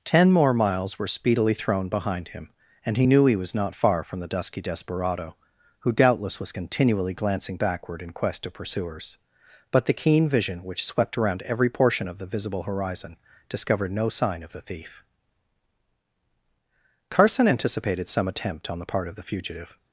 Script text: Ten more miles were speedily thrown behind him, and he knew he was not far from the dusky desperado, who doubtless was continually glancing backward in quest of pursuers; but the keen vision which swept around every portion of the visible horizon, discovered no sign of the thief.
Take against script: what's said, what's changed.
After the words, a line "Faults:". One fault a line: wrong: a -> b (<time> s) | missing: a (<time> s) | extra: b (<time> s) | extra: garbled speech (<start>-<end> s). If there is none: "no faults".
Ten more miles were speedily thrown behind him, and he knew he was not far from the dusky desperado, who doubtless was continually glancing backward in quest of pursuers; but the keen vision which swept around every portion of the visible horizon, discovered no sign of the thief. Carson anticipated some attempt on the part of the fugitive
Faults:
extra: Carson anticipated some attempt on the part of the fugitive (17.1 s)